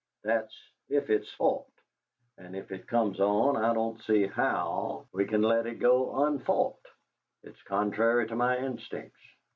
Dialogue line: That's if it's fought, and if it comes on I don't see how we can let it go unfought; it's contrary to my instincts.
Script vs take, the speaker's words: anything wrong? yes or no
no